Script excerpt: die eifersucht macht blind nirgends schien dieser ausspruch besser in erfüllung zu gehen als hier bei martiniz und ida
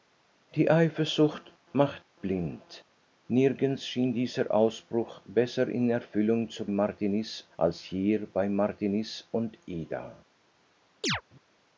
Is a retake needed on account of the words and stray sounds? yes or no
yes